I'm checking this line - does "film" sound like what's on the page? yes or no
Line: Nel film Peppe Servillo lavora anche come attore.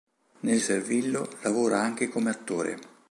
no